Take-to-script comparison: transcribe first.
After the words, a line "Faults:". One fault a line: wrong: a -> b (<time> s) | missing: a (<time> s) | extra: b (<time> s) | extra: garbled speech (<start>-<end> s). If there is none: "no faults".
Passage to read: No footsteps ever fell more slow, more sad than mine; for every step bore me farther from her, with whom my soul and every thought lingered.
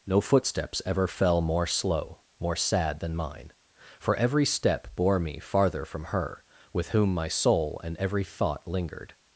No footsteps ever fell more slow, more sad than mine; for every step bore me farther from her, with whom my soul and every thought lingered.
Faults:
no faults